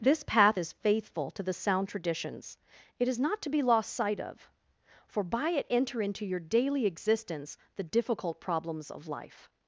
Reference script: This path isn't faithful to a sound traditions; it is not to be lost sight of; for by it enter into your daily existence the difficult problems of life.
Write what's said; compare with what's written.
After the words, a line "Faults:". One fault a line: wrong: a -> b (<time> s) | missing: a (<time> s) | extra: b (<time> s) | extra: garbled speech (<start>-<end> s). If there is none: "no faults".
This path is faithful to the sound traditions; it is not to be lost sight of; for by it enter into your daily existence the difficult problems of life.
Faults:
wrong: isn't -> is (0.6 s)
wrong: a -> the (1.4 s)